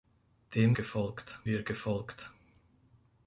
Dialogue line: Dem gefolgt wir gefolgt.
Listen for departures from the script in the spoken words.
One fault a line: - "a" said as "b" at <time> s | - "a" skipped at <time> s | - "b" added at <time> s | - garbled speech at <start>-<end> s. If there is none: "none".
none